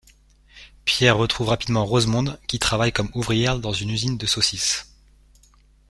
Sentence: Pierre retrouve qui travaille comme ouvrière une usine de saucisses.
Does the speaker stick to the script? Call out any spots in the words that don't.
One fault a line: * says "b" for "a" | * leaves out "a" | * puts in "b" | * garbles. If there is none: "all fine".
* puts in "rapidement Rosemonde"
* puts in "dans"